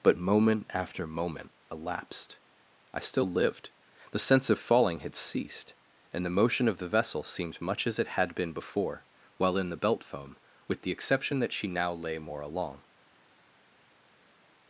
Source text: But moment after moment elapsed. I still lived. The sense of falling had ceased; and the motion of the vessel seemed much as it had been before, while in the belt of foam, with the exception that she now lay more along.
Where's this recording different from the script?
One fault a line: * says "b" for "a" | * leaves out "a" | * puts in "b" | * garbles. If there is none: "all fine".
* leaves out "of"